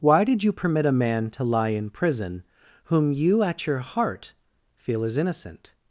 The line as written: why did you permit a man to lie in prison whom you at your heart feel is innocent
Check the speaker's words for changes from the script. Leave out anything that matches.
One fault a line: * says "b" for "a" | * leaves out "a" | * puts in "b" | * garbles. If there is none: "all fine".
all fine